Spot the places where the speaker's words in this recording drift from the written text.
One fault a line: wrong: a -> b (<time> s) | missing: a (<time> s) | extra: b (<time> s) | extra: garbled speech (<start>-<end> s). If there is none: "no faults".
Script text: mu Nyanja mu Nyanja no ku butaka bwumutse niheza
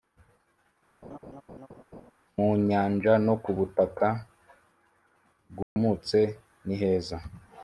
missing: mu Nyanja (3.1 s)